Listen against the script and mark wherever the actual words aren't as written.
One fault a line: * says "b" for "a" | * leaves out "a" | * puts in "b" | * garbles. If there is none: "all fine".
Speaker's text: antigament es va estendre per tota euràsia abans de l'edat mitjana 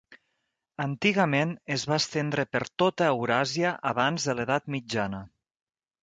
all fine